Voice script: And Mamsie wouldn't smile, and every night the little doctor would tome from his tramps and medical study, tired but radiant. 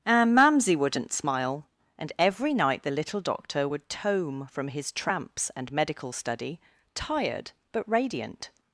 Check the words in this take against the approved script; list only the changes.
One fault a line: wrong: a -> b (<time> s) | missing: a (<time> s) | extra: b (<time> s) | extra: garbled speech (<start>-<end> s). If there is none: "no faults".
no faults